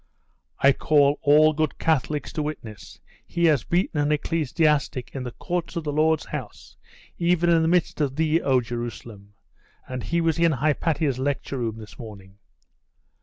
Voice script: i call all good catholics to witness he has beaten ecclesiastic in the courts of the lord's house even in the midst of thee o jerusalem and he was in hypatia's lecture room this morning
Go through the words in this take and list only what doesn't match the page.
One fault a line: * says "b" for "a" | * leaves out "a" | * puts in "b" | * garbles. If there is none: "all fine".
* puts in "an"